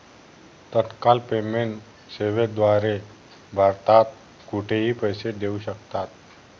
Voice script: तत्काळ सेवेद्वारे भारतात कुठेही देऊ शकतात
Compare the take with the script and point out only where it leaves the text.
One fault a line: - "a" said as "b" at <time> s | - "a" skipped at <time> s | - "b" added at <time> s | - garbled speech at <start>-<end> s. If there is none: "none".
- "पेमेंट" added at 1.3 s
- "पैसे" added at 5.0 s